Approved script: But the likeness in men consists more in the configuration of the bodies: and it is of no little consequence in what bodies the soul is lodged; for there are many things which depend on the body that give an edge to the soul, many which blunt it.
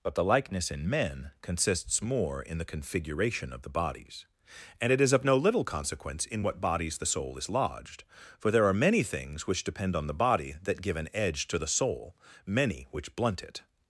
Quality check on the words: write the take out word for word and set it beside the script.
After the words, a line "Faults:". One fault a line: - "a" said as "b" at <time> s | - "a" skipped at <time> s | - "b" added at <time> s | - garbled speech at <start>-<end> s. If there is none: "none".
But the likeness in men consists more in the configuration of the bodies: and it is of no little consequence in what bodies the soul is lodged; for there are many things which depend on the body that give an edge to the soul, many which blunt it.
Faults:
none